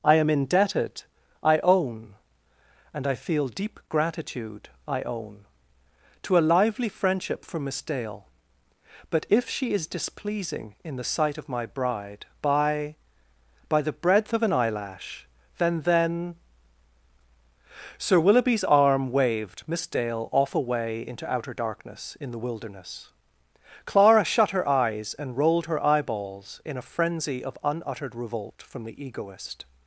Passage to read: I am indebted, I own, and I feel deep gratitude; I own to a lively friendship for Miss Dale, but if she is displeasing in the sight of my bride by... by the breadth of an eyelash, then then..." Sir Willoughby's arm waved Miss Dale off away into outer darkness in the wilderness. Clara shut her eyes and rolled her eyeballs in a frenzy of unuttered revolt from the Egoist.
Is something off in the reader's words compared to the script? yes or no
no